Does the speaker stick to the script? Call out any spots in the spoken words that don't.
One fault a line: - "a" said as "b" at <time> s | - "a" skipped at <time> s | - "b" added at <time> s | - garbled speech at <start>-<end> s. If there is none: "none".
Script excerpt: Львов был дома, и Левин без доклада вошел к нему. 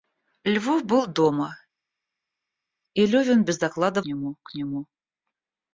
- "вошел" said as "нему" at 4.0 s